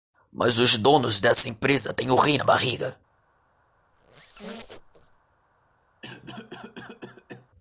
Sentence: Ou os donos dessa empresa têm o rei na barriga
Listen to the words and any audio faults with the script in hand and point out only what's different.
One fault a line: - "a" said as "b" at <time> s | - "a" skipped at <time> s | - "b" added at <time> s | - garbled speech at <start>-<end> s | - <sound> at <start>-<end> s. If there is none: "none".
- "Ou" said as "Mas" at 0.3 s
- squeak at 3.9-5.2 s
- cough at 6.0-7.5 s